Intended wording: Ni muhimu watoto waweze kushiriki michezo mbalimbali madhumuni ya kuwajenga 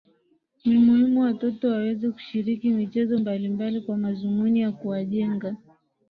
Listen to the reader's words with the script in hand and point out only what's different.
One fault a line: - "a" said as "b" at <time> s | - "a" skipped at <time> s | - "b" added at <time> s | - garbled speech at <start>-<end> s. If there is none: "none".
- "kwa" added at 3.8 s